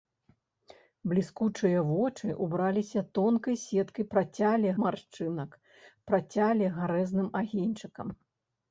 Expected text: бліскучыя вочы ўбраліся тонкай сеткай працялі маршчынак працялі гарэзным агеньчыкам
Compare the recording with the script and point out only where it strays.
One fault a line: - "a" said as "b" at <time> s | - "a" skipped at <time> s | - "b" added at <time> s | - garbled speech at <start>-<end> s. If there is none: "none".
none